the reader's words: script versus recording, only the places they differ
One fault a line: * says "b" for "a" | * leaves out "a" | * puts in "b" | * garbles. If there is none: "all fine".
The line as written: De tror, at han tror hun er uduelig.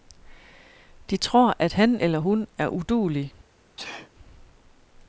* says "eller" for "tror"